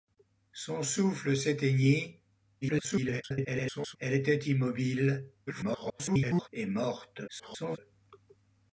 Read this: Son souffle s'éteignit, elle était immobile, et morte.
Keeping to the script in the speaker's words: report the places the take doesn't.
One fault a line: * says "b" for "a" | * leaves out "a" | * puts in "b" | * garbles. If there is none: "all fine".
* garbles
* garbles
* garbles